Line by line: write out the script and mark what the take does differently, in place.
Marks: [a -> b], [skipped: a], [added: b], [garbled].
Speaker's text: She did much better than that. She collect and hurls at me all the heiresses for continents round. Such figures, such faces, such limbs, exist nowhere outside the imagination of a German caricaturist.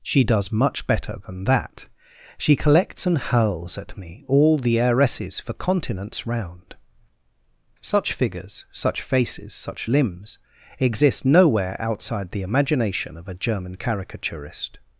She [did -> does] much better than that. She [collect -> collects] and hurls at me all the heiresses for continents round. Such figures, such faces, such limbs, exist nowhere outside the imagination of a German caricaturist.